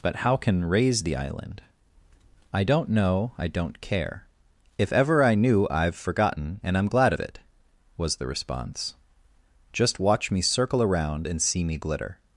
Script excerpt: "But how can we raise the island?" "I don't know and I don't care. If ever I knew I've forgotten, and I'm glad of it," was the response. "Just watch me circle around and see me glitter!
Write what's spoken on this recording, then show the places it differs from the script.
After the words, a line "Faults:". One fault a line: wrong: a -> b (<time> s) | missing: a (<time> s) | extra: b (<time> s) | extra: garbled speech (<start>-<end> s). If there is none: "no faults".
"But how can raise the island?" "I don't know I don't care. If ever I knew I've forgotten, and I'm glad of it," was the response. "Just watch me circle around and see me glitter!
Faults:
missing: we (0.7 s)
missing: and (3.3 s)